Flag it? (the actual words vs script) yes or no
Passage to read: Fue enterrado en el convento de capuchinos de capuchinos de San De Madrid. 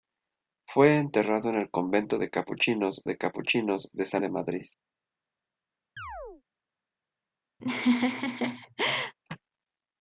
no